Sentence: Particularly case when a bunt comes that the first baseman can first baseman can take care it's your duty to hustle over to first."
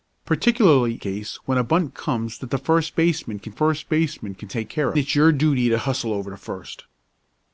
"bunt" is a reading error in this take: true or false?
false